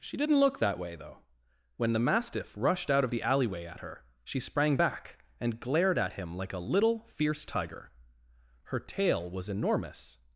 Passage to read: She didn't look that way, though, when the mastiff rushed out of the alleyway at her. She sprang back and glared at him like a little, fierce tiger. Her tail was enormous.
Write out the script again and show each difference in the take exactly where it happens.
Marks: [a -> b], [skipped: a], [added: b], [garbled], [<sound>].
She didn't look that way, though, when the mastiff rushed out of the alleyway at her. She sprang back and glared at him like a little, fierce tiger. Her tail was enormous.